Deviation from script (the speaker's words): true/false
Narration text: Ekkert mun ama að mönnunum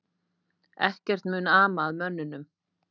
false